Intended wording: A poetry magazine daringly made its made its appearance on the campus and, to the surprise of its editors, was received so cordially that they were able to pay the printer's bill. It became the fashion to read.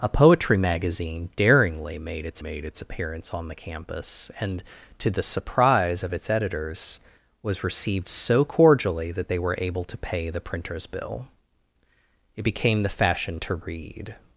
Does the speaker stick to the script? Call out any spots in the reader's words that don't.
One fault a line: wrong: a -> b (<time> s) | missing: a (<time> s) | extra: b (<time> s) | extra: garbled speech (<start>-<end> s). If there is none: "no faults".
no faults